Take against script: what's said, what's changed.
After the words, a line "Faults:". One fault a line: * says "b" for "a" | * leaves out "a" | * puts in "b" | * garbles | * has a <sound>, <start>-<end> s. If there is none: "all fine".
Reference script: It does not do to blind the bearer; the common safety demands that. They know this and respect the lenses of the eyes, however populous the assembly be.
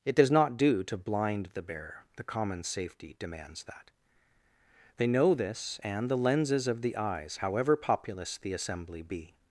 It does not do to blind the bearer; the common safety demands that. They know this and the lenses of the eyes, however populous the assembly be.
Faults:
* leaves out "respect"